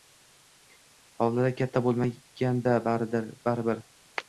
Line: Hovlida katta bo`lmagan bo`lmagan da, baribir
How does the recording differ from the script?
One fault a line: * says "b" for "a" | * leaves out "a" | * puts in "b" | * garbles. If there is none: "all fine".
* leaves out "bo`lmagan"